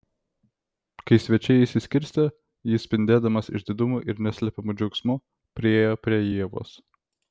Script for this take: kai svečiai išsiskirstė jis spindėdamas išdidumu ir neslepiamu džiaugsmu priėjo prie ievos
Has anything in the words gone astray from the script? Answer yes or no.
no